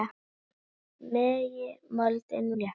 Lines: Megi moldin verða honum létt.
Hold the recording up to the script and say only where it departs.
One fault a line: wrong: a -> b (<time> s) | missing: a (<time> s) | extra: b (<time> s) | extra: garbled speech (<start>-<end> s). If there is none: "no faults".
missing: verða honum (2.5 s)